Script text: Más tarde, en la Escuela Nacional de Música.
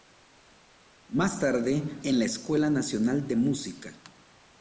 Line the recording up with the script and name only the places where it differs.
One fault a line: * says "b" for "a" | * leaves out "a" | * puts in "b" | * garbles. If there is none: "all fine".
all fine